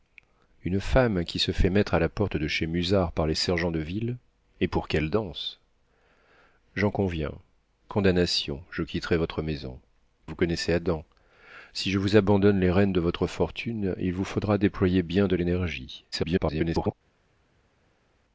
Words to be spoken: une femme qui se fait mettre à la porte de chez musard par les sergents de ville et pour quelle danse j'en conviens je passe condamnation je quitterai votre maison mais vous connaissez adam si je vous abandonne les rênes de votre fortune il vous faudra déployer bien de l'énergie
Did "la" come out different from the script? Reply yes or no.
no